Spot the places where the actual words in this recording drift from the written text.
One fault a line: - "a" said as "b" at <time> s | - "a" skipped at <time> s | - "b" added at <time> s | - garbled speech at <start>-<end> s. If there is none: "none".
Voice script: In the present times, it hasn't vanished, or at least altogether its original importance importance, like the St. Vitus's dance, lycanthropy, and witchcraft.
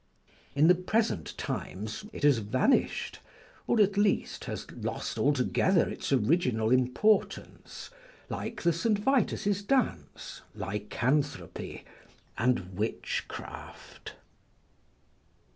- "hasn't" said as "has" at 2.2 s
- "has lost" added at 4.5 s
- "importance" skipped at 7.9 s